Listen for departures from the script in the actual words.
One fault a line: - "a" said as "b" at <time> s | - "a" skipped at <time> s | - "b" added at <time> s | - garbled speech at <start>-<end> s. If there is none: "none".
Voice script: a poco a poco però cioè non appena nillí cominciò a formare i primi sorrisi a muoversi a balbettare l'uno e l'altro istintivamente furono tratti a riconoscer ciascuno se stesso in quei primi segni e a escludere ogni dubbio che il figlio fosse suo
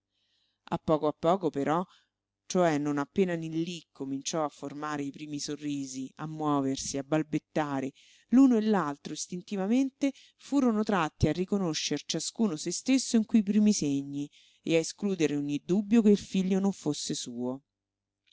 - "non" added at 16.6 s